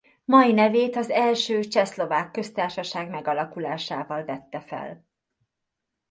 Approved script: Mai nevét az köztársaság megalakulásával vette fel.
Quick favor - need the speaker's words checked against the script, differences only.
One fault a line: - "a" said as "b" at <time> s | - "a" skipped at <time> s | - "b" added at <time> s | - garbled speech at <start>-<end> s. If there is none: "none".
- "első Csehszlovák" added at 1.1 s